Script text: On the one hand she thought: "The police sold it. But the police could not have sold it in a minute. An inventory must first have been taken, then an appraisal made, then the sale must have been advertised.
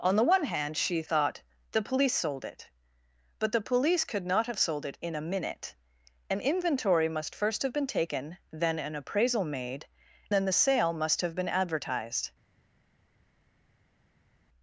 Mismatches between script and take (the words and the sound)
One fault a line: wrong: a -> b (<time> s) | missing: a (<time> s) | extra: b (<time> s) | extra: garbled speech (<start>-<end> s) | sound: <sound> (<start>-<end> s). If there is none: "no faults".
no faults